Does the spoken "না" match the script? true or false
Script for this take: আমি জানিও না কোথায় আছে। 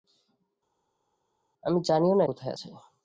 true